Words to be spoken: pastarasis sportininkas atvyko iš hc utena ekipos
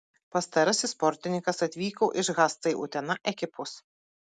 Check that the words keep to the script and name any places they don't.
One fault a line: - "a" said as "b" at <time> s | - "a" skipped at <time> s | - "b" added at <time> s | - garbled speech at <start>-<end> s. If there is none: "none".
none